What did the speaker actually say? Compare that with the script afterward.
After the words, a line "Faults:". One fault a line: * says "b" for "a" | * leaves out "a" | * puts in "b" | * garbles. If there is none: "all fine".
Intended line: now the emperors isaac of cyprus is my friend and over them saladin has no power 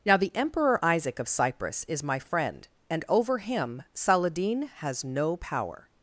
now the emperor isaac of cyprus is my friend and over him saladin has no power
Faults:
* says "emperor" for "emperors"
* says "him" for "them"